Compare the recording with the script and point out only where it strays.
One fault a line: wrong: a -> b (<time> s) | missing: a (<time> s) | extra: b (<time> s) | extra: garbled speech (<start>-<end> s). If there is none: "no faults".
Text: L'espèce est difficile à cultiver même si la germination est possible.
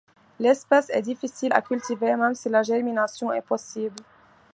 no faults